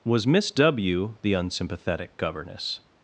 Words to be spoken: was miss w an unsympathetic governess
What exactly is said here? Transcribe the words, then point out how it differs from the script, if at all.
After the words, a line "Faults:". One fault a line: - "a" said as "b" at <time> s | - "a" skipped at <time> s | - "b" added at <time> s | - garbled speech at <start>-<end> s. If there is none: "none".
was miss w the unsympathetic governess
Faults:
- "an" said as "the" at 1.2 s